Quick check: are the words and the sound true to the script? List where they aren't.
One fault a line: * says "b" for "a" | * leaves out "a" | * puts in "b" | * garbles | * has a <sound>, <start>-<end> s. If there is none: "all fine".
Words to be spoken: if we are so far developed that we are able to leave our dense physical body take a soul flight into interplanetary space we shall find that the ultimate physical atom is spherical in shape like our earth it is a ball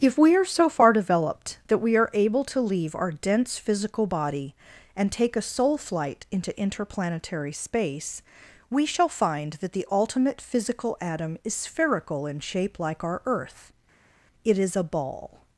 * puts in "and"